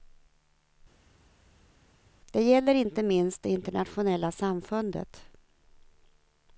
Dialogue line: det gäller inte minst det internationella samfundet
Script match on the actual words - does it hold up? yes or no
yes